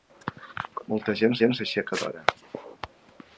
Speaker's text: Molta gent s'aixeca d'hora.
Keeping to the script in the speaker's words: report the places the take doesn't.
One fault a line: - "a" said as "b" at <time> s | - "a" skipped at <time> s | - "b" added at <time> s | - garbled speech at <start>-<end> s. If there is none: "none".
- "gent" added at 1.4 s